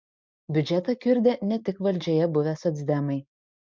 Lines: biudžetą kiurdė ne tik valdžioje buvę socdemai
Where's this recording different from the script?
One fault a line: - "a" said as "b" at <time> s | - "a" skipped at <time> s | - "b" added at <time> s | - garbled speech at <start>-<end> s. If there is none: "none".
none